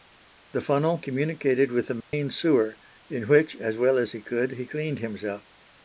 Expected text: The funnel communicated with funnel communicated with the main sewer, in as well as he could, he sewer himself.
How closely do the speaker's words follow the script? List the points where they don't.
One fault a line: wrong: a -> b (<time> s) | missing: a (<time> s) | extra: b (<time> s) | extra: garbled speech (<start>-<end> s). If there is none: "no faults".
missing: funnel communicated with (1.9 s)
extra: which (3.3 s)
wrong: sewer -> cleaned (4.6 s)